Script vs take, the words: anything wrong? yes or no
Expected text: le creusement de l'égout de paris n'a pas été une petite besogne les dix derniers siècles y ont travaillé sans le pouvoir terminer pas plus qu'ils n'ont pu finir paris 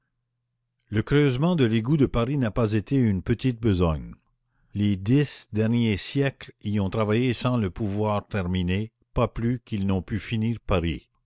no